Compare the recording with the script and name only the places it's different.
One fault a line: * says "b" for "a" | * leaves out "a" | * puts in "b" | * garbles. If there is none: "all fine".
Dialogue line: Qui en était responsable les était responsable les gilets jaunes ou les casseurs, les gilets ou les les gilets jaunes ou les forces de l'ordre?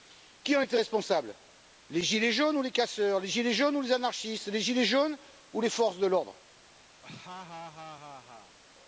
* leaves out "était responsable les"
* puts in "jaunes"
* puts in "anarchistes"